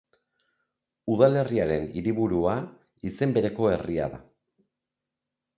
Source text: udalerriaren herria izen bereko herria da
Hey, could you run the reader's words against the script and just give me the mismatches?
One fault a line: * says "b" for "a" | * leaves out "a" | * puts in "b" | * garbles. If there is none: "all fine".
* says "hiriburua" for "herria"